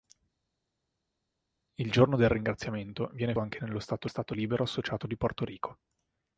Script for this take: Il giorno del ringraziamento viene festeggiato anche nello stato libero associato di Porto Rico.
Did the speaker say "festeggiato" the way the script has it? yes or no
no